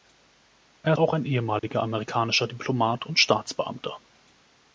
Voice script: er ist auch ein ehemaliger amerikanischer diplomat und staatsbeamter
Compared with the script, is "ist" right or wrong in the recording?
wrong